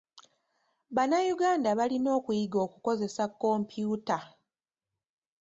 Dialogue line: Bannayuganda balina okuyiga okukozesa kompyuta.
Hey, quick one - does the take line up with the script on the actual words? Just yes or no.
yes